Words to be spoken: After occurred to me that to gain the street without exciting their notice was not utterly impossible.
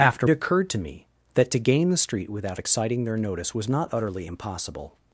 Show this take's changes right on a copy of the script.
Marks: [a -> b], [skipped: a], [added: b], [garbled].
After occurred to me that to gain the street without exciting their notice was not utterly impossible.